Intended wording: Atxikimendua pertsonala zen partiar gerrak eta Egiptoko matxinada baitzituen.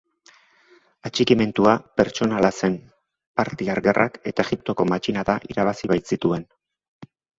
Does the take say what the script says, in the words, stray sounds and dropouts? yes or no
no